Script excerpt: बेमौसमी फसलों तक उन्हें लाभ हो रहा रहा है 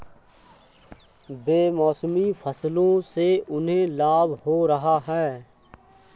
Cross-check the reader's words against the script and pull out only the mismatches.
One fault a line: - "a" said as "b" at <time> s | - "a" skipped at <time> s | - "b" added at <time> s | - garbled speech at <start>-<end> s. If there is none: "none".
- "तक" said as "से" at 3.0 s
- "रहा" skipped at 5.0 s